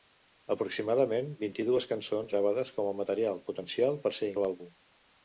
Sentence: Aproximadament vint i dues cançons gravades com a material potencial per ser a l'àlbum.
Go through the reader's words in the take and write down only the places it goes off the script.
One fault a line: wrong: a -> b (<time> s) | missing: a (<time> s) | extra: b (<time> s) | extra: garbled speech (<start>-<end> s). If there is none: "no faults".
no faults